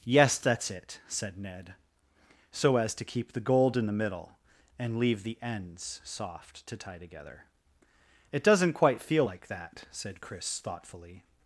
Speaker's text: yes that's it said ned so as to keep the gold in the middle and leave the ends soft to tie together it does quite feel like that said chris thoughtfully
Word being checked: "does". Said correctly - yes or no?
no